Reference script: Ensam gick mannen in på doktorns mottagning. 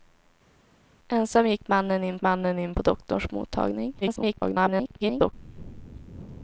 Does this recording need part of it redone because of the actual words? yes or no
yes